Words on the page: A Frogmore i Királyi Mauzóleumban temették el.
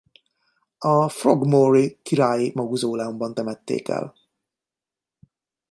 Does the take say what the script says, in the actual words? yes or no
yes